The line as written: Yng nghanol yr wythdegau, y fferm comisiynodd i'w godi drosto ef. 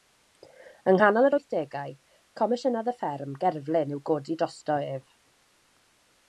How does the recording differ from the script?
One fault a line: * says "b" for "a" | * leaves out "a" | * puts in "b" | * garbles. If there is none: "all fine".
* puts in "comisiynodd"
* says "gerflun" for "comisiynodd"